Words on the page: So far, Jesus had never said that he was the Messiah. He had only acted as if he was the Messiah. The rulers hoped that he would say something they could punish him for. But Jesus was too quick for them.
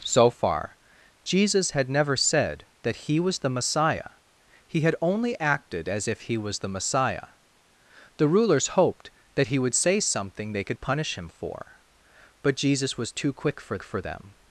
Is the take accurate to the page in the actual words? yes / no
no